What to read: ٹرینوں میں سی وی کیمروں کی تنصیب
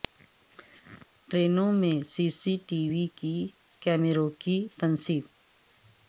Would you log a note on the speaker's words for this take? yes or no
yes